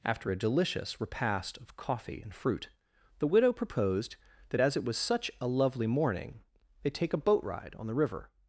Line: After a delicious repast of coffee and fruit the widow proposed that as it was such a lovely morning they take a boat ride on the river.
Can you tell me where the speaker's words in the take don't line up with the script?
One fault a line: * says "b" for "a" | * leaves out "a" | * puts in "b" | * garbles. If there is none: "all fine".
all fine